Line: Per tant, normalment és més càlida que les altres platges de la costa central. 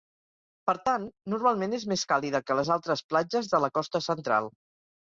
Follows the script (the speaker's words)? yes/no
yes